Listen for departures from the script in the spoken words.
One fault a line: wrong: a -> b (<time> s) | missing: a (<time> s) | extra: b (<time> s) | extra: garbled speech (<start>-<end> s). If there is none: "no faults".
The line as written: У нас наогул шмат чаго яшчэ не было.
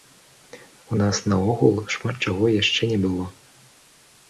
no faults